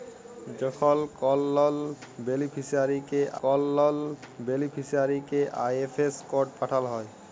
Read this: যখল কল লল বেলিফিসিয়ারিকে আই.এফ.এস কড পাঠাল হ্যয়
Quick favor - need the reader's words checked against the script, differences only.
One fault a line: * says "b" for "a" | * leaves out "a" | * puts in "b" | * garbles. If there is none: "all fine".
* puts in "কল লল বেলিফিসিয়ারিকে"